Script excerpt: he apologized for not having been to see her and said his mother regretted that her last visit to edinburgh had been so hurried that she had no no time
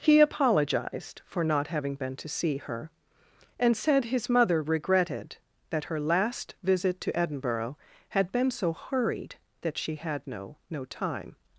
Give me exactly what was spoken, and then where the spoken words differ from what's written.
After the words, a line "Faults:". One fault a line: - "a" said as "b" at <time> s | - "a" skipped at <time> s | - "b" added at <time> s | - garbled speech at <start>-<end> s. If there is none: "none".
he apologized for not having been to see her and said his mother regretted that her last visit to edinburgh had been so hurried that she had no no time
Faults:
none